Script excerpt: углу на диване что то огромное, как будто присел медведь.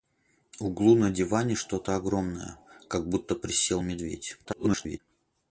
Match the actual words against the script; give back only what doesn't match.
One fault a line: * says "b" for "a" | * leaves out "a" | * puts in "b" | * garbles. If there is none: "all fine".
* garbles